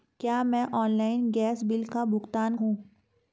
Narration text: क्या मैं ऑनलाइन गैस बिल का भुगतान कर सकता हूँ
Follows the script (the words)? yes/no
no